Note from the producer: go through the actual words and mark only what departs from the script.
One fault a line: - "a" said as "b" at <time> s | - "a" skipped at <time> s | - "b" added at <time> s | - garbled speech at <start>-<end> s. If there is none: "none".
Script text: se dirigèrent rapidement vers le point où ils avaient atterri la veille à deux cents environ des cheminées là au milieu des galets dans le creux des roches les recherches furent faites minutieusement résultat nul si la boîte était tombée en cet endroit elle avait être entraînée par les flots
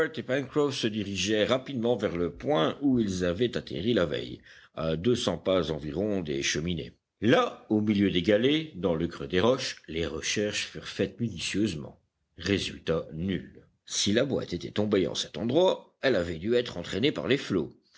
- "pas" added at 5.4 s
- "dû" added at 16.4 s